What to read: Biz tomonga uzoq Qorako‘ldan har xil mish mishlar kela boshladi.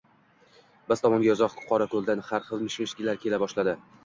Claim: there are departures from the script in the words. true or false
false